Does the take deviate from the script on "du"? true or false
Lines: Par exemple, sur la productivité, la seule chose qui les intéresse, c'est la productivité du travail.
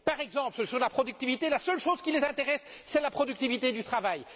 false